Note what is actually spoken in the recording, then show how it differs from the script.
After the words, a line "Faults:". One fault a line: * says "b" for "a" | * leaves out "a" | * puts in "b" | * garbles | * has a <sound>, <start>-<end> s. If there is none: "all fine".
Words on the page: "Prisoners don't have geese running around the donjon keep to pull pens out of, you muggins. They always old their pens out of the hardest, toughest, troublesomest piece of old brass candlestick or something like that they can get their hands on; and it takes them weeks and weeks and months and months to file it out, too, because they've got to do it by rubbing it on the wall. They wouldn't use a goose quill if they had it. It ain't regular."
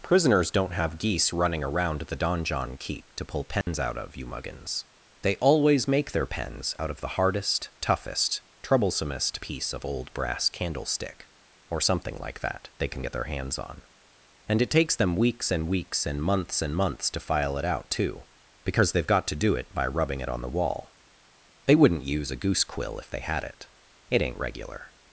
"Prisoners don't have geese running around the donjon keep to pull pens out of, you muggins. They always make their pens out of the hardest, toughest, troublesomest piece of old brass candlestick or something like that they can get their hands on; and it takes them weeks and weeks and months and months to file it out, too, because they've got to do it by rubbing it on the wall. They wouldn't use a goose quill if they had it. It ain't regular."
Faults:
* has a dropout, 3.6-3.7 s
* says "make" for "old"